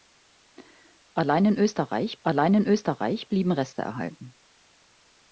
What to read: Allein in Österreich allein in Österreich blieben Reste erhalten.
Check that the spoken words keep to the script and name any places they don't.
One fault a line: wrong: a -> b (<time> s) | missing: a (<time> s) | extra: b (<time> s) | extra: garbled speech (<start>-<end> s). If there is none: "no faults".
no faults